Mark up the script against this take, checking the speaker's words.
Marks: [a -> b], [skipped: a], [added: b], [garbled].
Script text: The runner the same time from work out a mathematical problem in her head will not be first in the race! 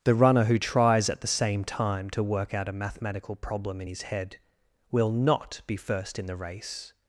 The runner [added: who tries at] the same time [from -> to] work out a mathematical problem in [her -> his] head will not be first in the race!